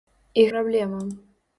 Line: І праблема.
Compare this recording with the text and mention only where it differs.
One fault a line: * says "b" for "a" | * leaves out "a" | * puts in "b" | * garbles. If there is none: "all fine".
all fine